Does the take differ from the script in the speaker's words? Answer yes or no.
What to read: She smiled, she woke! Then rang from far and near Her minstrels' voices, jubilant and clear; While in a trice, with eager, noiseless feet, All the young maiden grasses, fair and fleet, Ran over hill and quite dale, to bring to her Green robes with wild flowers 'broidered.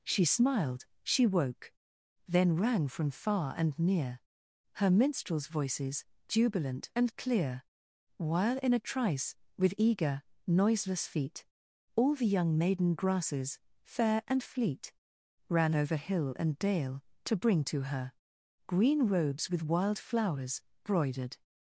yes